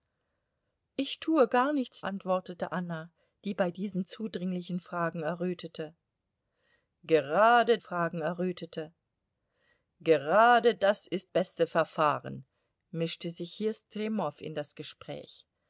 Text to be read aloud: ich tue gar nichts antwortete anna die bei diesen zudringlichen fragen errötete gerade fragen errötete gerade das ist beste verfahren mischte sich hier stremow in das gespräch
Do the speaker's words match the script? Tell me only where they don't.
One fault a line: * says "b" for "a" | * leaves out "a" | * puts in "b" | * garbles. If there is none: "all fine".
all fine